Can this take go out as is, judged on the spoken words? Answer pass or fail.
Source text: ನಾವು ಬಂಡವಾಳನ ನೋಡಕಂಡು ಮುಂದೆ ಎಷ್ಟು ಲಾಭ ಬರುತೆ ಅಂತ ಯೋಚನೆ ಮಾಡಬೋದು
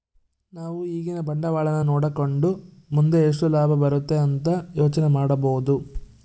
fail